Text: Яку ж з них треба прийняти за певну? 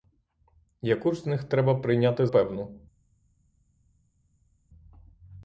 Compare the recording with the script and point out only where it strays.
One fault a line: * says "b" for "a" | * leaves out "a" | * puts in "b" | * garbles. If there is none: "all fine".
* leaves out "за"